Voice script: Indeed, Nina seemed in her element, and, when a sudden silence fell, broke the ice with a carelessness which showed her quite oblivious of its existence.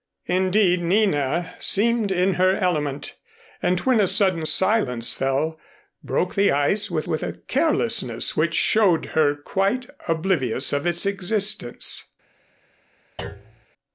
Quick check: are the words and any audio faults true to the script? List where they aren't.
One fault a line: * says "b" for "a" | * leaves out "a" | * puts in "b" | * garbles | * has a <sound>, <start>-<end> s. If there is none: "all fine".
* puts in "with"
* has a thud, 13.2-13.7 s